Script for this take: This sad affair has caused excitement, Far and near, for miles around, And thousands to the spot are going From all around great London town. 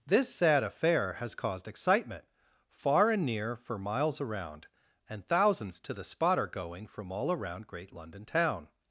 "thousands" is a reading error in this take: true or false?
false